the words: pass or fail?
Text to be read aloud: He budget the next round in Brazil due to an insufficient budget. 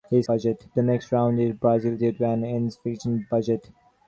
pass